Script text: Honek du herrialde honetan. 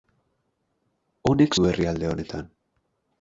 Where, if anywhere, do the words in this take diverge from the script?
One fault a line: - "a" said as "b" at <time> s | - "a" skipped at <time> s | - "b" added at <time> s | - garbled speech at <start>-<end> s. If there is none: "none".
none